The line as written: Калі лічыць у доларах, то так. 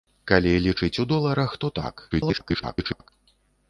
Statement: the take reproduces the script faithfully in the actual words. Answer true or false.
false